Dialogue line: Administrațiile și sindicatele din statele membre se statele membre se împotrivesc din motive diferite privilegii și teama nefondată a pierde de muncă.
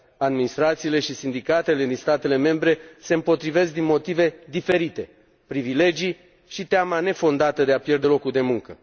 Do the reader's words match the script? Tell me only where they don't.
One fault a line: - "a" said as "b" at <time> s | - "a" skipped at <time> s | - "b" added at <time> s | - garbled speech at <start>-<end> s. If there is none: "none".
- "statele membre se" skipped at 3.1 s
- "de" added at 7.6 s
- "locul" added at 8.0 s